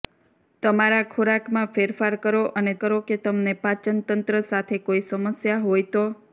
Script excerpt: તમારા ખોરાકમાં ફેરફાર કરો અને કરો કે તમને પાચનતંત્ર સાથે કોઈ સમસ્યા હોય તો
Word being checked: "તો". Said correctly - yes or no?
yes